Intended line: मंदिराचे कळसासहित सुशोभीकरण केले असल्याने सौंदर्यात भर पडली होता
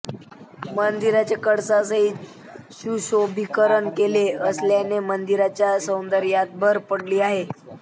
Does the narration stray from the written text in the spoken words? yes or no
yes